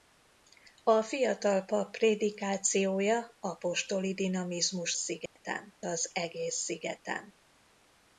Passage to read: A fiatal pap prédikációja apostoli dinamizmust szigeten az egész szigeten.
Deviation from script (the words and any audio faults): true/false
true